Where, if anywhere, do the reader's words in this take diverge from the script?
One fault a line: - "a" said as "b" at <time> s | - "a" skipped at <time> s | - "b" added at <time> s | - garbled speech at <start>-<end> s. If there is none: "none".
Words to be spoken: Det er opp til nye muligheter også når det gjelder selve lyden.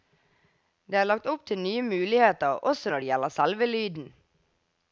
- "lagt" added at 1.1 s